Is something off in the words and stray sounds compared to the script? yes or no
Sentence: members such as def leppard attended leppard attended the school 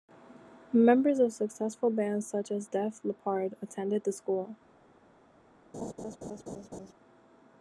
yes